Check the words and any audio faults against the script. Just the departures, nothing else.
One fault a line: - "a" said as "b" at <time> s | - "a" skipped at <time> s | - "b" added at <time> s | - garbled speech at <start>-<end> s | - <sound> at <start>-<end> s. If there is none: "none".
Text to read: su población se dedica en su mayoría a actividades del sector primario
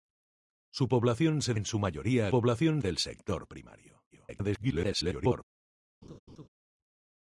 - "dedica" skipped at 1.5 s
- "actividades" said as "población" at 2.3 s
- garbled speech at 4.1-5.4 s
- laugh at 6.0-6.5 s